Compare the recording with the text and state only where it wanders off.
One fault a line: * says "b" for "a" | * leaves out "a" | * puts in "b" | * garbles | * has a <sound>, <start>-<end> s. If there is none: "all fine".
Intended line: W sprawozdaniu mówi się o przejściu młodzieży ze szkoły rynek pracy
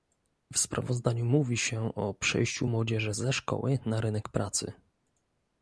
* puts in "na"